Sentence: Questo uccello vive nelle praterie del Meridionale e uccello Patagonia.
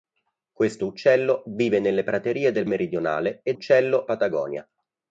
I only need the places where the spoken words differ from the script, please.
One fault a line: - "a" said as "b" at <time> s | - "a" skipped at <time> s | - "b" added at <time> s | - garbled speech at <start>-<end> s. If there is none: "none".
none